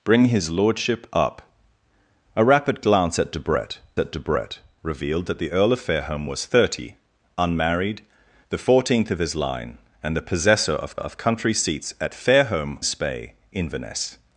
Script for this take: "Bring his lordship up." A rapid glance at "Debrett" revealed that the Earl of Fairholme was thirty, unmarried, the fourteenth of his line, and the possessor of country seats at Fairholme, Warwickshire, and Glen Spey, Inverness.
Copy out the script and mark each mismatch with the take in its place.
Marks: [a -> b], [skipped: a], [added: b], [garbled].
"Bring his lordship up." A rapid glance at "Debrett" [added: at Debrett] revealed that the Earl of Fairholme was thirty, unmarried, the fourteenth of his line, and the possessor of [added: of] country seats at Fairholme, [skipped: Warwickshire, and Glen] Spey, Inverness.